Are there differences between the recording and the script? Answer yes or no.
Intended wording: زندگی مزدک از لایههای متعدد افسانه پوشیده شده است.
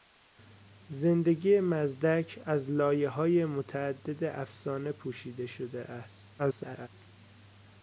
yes